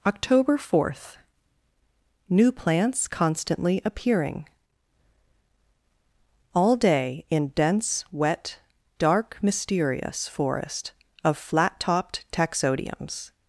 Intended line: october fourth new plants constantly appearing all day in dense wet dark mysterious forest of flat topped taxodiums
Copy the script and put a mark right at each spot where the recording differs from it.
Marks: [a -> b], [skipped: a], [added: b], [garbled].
october fourth new plants constantly appearing all day in dense wet dark mysterious forest of flat topped taxodiums